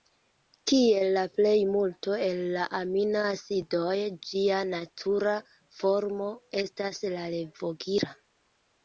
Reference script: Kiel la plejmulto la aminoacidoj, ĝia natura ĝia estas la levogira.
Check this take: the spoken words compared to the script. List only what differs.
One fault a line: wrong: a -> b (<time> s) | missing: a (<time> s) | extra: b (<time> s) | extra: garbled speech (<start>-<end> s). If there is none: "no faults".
extra: el (2.3 s)
wrong: ĝia -> formo (5.8 s)